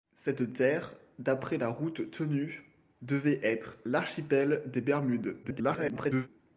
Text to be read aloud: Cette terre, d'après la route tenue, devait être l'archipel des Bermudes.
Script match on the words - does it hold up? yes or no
no